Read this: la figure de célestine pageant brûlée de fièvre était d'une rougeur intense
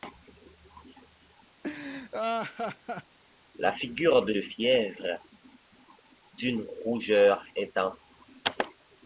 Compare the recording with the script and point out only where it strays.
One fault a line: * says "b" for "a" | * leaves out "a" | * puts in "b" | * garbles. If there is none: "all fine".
* leaves out "célestine pageant brûlée"
* leaves out "était"